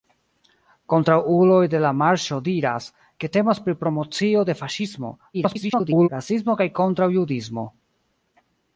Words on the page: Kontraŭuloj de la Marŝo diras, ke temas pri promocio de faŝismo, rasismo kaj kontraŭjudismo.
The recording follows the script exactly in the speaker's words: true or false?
false